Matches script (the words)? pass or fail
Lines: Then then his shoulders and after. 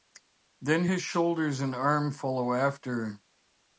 fail